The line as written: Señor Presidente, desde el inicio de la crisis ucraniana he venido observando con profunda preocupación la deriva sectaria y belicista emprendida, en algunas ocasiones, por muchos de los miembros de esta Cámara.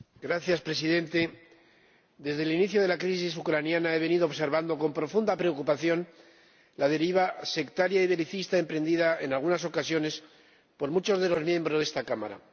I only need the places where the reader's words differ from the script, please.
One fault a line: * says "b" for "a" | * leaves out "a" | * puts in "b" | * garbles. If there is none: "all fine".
all fine